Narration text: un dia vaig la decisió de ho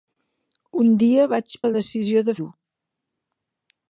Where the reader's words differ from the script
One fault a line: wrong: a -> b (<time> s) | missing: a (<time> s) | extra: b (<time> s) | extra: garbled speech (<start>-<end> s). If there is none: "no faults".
no faults